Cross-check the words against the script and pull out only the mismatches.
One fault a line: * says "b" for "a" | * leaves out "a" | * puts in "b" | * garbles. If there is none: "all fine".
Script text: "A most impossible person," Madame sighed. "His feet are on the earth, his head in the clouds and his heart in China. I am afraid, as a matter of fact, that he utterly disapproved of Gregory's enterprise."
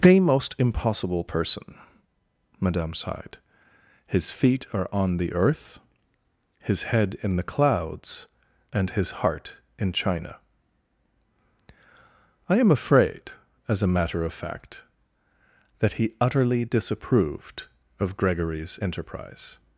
* says "The" for "A"